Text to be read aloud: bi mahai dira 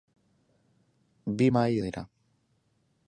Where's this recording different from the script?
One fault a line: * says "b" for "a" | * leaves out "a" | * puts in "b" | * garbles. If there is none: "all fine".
all fine